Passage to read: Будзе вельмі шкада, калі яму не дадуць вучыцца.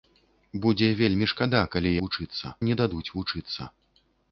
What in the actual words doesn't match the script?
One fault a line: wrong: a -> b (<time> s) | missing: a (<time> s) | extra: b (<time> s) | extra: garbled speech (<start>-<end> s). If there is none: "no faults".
wrong: яму -> вучыцца (2.0 s)